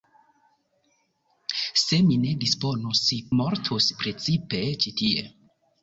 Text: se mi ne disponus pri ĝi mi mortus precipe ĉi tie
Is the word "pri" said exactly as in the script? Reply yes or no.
no